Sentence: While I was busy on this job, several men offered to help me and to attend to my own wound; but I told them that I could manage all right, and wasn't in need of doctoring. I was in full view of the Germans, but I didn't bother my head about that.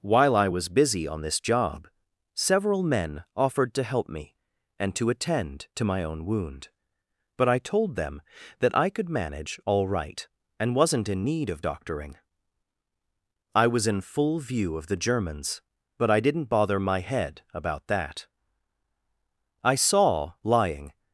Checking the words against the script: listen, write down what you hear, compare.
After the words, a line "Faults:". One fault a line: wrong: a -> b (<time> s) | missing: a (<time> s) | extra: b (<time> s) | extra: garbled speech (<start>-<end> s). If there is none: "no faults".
While I was busy on this job, several men offered to help me and to attend to my own wound; but I told them that I could manage all right, and wasn't in need of doctoring. I was in full view of the Germans, but I didn't bother my head about that. I saw, lying
Faults:
extra: I saw lying (19.6 s)